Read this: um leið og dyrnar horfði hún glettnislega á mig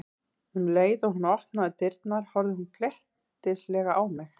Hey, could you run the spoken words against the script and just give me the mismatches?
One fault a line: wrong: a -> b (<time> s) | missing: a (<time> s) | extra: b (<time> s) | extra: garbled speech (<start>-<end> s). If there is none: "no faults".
extra: hún opnaði (1.2 s)